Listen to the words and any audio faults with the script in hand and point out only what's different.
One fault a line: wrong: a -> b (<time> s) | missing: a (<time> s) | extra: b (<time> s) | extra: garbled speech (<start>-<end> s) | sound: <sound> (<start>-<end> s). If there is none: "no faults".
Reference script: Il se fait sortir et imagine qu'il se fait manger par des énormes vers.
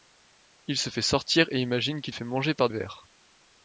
missing: se (2.1 s)
missing: des énormes (2.7 s)